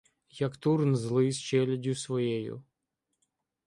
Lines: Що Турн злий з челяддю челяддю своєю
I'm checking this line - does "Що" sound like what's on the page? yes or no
no